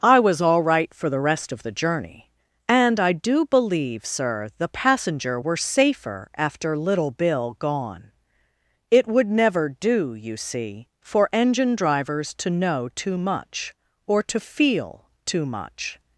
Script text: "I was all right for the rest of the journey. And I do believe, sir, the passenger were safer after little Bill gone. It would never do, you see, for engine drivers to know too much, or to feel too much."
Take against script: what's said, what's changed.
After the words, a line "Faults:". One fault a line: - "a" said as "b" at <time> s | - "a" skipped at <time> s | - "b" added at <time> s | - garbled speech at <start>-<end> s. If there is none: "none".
"I was all right for the rest of the journey. And I do believe, sir, the passenger were safer after little Bill gone. It would never do, you see, for engine drivers to know too much, or to feel too much."
Faults:
none